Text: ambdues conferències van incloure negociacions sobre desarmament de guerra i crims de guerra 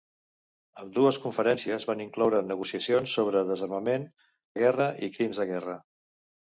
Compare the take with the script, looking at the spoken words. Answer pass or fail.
pass